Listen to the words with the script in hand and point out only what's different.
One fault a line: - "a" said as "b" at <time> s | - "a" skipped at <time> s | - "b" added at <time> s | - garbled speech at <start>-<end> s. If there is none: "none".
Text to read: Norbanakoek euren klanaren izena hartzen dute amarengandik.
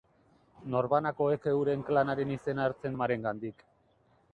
- "dute" skipped at 3.0 s